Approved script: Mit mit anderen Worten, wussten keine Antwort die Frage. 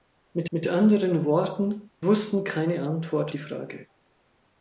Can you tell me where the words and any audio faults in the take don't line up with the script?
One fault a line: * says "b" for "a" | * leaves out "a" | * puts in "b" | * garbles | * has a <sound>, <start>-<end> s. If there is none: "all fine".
all fine